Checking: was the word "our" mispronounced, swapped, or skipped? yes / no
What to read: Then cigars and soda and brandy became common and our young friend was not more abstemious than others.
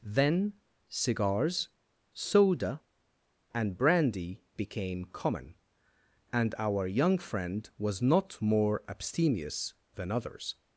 no